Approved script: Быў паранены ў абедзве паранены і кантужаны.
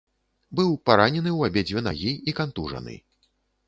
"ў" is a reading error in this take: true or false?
false